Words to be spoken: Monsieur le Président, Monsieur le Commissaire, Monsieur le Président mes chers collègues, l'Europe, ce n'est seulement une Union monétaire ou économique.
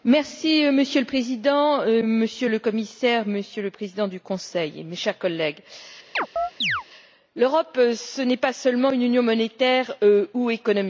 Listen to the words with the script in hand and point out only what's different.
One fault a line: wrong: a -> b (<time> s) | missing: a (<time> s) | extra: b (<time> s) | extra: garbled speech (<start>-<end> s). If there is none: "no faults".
extra: du Conseil (4.1 s)
extra: pas (8.4 s)